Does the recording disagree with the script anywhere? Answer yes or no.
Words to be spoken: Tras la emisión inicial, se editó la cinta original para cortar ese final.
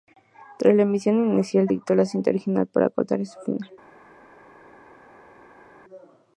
yes